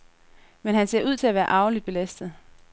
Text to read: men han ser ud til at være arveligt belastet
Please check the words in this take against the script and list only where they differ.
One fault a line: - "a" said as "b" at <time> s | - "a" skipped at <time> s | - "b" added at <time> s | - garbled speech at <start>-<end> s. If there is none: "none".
none